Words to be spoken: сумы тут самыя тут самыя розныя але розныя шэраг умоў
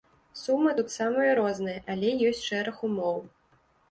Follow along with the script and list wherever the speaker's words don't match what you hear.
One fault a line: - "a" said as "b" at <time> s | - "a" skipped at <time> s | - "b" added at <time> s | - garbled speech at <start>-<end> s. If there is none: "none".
- "тут самыя" skipped at 1.3 s
- "розныя" said as "ёсць" at 2.3 s